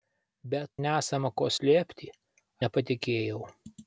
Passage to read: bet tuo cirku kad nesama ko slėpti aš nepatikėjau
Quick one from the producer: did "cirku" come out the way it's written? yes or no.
no